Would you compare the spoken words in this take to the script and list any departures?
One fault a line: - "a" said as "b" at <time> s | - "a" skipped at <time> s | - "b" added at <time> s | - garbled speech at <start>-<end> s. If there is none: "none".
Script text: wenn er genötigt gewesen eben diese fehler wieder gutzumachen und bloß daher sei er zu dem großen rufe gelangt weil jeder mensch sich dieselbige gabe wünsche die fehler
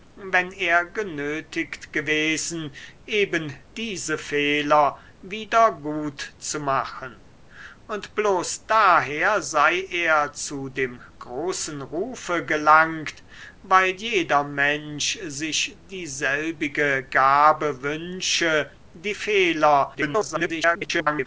- garbled speech at 19.9-21.3 s